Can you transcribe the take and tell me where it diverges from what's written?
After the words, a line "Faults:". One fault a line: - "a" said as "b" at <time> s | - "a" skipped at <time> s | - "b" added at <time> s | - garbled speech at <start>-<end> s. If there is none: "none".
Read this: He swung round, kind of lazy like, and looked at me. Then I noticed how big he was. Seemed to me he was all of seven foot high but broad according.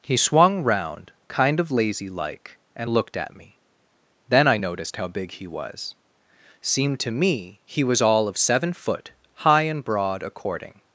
He swung round, kind of lazy like, and looked at me. Then I noticed how big he was. Seemed to me he was all of seven foot high and broad according.
Faults:
- "but" said as "and" at 9.6 s